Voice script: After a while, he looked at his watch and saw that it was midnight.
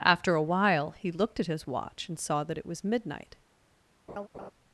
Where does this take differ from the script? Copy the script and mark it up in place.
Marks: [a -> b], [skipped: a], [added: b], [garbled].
After a while, he looked at his watch and saw that it was midnight.